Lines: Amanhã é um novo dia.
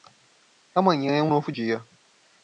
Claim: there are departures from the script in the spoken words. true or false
false